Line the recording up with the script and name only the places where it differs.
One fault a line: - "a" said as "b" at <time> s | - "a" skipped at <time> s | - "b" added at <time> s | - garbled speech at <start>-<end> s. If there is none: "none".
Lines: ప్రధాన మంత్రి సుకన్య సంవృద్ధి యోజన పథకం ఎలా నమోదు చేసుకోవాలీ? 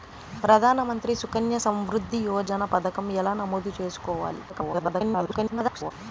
- garbled speech at 4.5-5.9 s